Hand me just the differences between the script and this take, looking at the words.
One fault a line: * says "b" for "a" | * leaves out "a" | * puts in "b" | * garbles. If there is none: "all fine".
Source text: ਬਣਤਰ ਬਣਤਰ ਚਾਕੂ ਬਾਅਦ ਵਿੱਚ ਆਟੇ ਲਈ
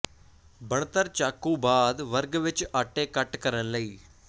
* leaves out "ਬਣਤਰ"
* puts in "ਵਰਗ"
* puts in "ਕੱਟ ਕਰਨ"